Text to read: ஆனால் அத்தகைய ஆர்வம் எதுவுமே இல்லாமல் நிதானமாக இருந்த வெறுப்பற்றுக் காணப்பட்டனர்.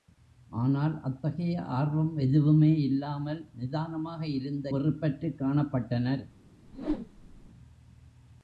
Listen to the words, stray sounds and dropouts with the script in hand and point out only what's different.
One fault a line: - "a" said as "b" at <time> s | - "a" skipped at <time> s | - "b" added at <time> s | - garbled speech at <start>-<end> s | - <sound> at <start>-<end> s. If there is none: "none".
- whoosh at 6.7-7.5 s